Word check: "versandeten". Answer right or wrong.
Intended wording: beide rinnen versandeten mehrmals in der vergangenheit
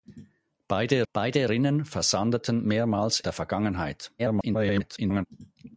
right